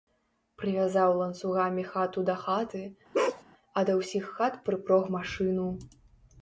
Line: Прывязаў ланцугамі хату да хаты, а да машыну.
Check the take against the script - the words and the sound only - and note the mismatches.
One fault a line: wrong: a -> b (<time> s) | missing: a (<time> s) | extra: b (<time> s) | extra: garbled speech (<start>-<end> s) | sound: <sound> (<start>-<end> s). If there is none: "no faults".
sound: bark (3.1-3.4 s)
extra: ўсіх хат прыпрог (4.0 s)